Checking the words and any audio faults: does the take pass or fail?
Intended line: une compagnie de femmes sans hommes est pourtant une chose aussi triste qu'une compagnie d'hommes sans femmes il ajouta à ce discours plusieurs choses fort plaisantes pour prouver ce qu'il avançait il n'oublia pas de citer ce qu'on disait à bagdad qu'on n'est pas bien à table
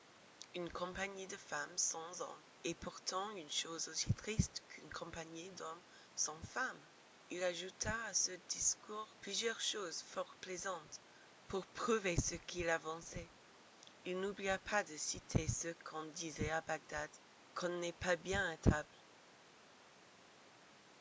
pass